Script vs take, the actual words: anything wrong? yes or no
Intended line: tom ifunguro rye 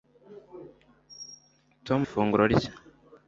no